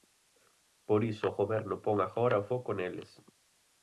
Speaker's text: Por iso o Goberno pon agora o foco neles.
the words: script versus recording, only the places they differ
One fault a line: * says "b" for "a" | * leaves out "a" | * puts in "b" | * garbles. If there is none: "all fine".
all fine